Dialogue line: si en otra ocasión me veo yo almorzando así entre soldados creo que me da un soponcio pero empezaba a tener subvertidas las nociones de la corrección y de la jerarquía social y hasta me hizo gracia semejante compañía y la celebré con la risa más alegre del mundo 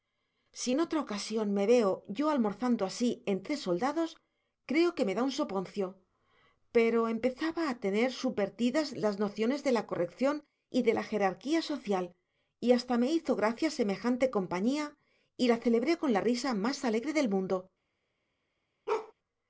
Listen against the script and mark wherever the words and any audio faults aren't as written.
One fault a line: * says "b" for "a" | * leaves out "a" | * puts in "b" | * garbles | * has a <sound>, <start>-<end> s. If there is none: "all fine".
* has a bark, 18.9-19.1 s